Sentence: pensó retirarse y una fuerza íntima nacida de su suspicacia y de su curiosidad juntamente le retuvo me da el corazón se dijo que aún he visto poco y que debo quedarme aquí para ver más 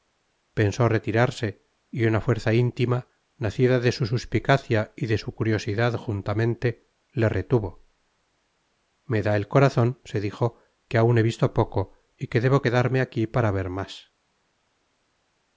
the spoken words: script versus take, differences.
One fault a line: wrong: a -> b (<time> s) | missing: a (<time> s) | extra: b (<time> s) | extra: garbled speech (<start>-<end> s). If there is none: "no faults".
no faults